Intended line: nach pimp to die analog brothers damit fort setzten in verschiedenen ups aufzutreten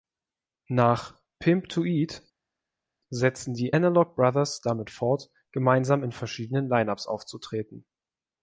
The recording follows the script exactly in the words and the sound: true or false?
false